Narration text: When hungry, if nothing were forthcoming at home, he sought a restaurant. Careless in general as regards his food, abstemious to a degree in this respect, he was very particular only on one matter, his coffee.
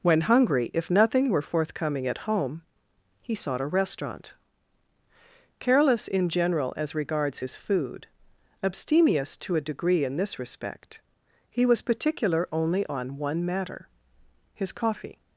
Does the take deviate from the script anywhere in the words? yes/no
yes